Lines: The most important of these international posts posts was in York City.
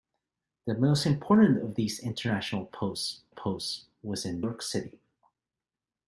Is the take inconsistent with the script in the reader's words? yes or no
no